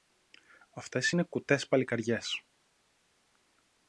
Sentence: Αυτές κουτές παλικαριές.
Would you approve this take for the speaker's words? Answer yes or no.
no